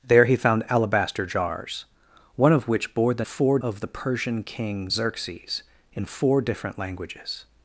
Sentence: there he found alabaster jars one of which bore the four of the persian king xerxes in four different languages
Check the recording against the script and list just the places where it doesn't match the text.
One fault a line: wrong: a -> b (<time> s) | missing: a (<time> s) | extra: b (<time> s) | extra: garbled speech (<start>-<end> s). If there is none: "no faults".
no faults